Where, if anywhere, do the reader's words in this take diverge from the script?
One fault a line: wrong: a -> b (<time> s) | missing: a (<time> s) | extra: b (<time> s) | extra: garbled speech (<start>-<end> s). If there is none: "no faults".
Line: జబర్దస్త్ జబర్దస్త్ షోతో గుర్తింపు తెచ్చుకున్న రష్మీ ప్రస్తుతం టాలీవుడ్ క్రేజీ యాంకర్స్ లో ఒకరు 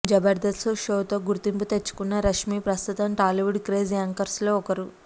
missing: జబర్దస్త్ (0.7 s)